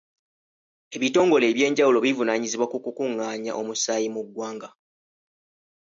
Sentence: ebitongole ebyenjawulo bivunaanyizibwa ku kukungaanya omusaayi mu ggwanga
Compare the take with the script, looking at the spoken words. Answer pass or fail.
pass